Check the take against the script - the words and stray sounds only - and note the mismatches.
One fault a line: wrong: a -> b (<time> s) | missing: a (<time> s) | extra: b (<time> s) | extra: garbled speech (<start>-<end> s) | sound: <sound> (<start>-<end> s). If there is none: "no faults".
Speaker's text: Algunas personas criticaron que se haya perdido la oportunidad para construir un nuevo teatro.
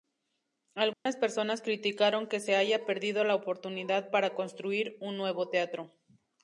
sound: dropout (0.9-1.1 s)